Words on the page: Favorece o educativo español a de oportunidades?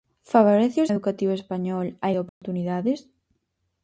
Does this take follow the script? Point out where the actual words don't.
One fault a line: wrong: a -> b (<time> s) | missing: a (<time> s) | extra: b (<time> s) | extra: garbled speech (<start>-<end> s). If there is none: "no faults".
no faults